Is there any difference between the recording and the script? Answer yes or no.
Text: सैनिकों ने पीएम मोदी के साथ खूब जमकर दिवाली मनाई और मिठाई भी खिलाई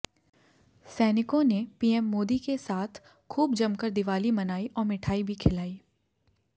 no